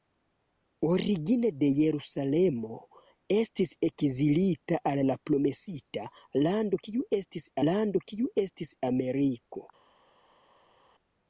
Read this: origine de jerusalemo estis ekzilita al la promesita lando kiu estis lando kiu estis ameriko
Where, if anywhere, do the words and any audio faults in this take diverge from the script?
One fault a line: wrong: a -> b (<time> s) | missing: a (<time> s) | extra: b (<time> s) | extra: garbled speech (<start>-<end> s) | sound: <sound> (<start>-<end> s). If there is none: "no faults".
no faults